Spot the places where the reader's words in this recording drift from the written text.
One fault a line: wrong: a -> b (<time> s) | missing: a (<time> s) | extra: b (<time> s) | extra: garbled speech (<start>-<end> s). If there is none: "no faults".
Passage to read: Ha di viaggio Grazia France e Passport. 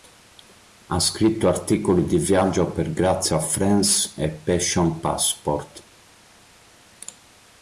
extra: scritto articoli (1.0 s)
extra: per (2.7 s)
extra: Passion (4.3 s)